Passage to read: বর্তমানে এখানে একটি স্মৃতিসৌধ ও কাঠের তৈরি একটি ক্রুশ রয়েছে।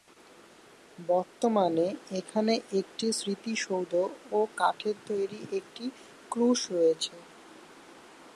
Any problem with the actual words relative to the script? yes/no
no